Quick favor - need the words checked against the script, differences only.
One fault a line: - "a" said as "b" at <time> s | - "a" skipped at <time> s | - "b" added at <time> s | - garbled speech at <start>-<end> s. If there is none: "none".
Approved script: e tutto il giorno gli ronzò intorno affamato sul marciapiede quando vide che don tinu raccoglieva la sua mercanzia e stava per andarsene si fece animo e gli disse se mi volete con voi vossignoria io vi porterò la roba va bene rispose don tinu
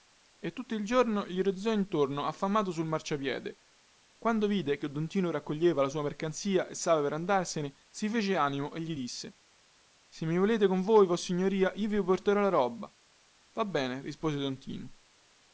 none